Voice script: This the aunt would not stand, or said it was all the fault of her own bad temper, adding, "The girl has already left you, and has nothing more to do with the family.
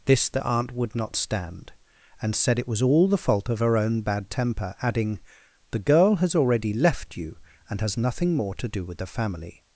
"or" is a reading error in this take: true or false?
true